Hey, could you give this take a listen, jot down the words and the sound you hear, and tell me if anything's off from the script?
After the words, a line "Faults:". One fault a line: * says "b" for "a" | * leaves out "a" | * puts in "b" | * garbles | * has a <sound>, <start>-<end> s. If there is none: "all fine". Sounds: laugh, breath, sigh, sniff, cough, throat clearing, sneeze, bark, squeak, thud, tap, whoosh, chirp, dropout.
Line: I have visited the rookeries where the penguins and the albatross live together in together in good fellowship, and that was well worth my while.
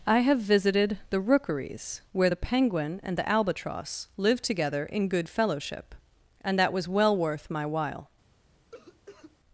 I have visited the rookeries where the penguin and the albatross live together in good fellowship, and that was well worth my while.
Faults:
* says "penguin" for "penguins"
* leaves out "together in"
* has a cough, 8.7-9.4 s